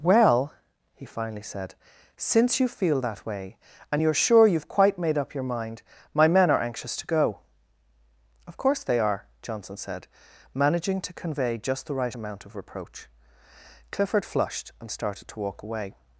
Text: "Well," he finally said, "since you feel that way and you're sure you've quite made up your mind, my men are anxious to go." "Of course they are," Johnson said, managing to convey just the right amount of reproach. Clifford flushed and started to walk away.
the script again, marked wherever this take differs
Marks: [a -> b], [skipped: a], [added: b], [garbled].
"Well," he finally said, "since you feel that way and you're sure you've quite made up your mind, my men are anxious to go." "Of course they are," Johnson said, managing to convey just the right amount of reproach. Clifford flushed and started to walk away.